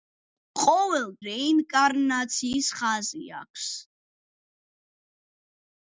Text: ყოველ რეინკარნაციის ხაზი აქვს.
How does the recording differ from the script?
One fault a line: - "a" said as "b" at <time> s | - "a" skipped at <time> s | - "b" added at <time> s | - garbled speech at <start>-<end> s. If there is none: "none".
none